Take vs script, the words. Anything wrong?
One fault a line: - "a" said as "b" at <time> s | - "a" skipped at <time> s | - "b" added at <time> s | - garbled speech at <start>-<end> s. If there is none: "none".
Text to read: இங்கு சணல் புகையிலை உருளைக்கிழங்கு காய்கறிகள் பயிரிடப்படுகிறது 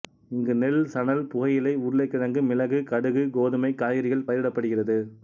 - "நெல்" added at 0.6 s
- "மிளகு கடுகு கோதுமை" added at 2.4 s